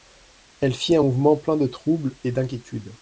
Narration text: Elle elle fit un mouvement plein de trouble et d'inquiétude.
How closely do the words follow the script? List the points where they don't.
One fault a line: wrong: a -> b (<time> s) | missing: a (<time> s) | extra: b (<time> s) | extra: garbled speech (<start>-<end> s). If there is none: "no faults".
missing: elle (0.7 s)